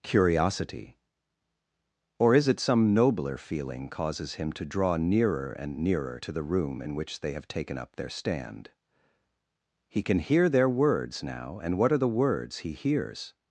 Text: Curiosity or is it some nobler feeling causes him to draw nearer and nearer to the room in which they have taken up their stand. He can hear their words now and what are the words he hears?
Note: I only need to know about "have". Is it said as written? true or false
true